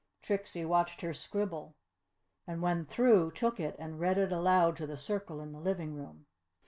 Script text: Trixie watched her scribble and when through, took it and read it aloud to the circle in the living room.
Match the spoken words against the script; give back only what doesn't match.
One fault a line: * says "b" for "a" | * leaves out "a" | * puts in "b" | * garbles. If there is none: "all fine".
all fine